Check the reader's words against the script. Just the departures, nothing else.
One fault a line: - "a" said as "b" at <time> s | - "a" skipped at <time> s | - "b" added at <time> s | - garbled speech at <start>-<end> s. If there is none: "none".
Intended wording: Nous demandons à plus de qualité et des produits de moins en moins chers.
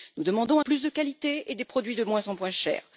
none